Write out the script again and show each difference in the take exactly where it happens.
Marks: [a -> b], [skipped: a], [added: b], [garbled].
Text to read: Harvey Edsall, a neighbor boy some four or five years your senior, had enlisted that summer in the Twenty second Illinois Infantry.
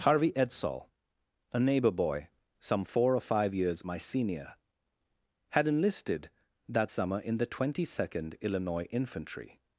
Harvey Edsall, a neighbor boy some four or five years [your -> my] senior, had enlisted that summer in the Twenty second Illinois Infantry.